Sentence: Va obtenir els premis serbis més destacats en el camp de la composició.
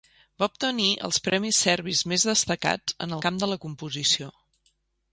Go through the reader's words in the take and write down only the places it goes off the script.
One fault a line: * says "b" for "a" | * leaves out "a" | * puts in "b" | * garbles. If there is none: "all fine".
* leaves out "el"